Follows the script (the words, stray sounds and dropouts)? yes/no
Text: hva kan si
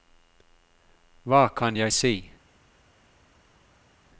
no